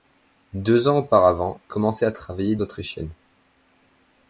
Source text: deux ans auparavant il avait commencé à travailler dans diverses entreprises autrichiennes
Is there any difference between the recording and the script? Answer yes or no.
yes